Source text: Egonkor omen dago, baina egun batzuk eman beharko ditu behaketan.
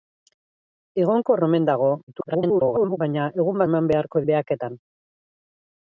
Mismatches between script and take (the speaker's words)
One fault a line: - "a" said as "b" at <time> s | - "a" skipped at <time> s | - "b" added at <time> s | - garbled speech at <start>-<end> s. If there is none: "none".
- garbled speech at 2.1-3.0 s
- "batzuk" skipped at 3.6 s
- "ditu" skipped at 4.2 s